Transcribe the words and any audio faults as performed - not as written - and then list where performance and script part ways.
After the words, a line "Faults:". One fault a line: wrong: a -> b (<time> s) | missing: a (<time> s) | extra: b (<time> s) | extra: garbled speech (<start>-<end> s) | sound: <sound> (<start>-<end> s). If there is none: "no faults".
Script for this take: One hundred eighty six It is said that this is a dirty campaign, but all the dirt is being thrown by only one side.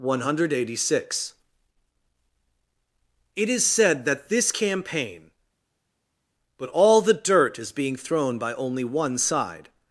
One hundred eighty six It is said that this campaign, but all the dirt is being thrown by only one side.
Faults:
missing: is a dirty (4.5 s)